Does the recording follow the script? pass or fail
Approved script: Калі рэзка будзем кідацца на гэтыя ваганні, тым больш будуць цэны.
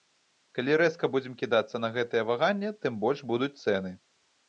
pass